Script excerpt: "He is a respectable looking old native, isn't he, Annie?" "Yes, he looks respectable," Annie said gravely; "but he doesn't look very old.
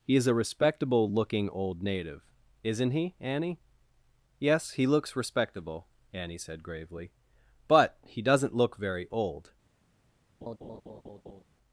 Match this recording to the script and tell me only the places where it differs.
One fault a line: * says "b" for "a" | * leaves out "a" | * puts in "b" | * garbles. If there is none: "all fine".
all fine